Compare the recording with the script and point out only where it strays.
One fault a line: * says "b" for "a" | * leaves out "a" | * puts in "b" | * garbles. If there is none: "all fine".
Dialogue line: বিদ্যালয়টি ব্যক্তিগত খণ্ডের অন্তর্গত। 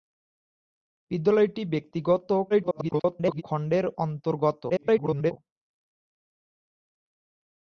* garbles
* garbles